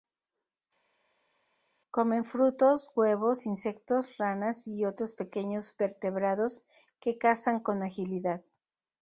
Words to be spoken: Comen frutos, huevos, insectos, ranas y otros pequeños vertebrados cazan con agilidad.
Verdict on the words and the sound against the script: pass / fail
fail